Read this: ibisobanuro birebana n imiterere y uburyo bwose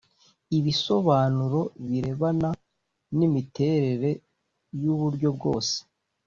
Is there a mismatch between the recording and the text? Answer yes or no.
no